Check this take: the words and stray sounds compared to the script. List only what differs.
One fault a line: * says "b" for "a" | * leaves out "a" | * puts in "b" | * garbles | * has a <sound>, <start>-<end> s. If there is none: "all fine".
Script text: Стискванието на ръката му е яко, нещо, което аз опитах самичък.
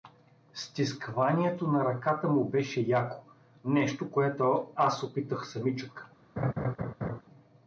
* says "беше" for "е"
* has a laugh, 6.4-7.2 s